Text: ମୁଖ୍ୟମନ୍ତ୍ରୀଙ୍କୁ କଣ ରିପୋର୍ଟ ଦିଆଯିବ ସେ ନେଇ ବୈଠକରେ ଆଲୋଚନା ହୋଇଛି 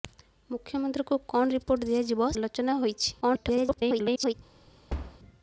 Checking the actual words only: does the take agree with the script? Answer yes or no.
no